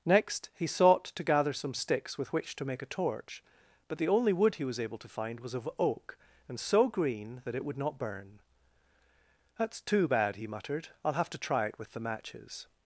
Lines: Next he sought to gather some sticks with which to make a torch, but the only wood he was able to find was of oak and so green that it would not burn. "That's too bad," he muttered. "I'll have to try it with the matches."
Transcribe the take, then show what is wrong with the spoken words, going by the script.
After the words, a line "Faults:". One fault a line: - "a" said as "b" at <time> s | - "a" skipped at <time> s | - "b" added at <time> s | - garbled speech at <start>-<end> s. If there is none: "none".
Next he sought to gather some sticks with which to make a torch, but the only wood he was able to find was of oak and so green that it would not burn. "That's too bad," he muttered. "I'll have to try it with the matches."
Faults:
none